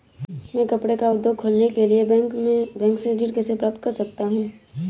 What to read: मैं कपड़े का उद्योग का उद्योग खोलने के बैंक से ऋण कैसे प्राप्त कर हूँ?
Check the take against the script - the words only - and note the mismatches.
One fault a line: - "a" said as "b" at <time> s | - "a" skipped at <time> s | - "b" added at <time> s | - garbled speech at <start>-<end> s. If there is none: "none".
- "का उद्योग" skipped at 1.4 s
- "लिए" added at 1.9 s
- "सकता" added at 3.9 s